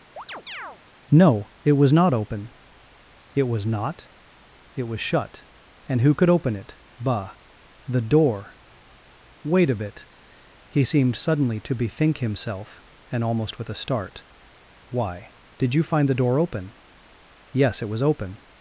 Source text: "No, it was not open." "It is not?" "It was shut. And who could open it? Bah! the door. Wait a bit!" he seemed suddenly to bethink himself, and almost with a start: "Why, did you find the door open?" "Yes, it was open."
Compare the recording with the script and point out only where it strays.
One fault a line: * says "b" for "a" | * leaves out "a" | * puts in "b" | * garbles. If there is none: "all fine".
* says "was" for "is"